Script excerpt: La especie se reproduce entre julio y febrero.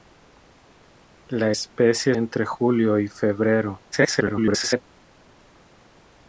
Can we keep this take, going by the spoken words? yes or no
no